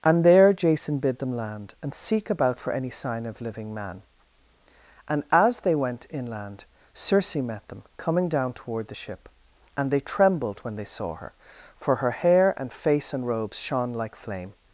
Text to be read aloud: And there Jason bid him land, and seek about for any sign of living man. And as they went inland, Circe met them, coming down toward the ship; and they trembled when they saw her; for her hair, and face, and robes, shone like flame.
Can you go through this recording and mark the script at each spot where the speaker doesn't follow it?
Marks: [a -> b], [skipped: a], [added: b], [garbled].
And there Jason bid [him -> them] land, and seek about for any sign of living man. And as they went inland, Circe met them, coming down toward the ship; and they trembled when they saw her; for her hair, and face, and robes, shone like flame.